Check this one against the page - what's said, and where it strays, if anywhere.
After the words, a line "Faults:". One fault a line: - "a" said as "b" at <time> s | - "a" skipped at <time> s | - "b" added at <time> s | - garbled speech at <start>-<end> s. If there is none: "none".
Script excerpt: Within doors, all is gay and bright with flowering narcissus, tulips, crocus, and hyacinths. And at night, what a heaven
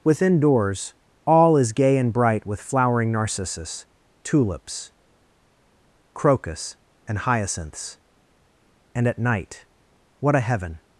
Within doors, all is gay and bright with flowering narcissus, tulips, crocus, and hyacinths. And at night, what a heaven
Faults:
none